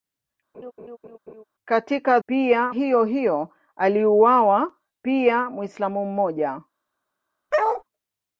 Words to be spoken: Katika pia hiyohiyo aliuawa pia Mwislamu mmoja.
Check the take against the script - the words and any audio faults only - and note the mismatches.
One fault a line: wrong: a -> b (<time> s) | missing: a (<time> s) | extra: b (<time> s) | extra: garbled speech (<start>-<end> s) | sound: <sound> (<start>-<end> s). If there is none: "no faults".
sound: laugh (0.5-1.4 s)
sound: bark (7.5-7.8 s)